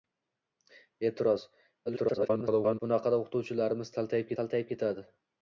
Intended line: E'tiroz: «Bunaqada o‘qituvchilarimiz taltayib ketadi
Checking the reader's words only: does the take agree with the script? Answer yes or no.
no